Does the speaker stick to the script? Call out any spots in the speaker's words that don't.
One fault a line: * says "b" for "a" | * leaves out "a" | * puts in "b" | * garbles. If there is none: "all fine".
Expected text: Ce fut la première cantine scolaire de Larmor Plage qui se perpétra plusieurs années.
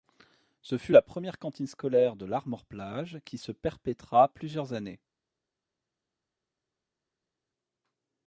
all fine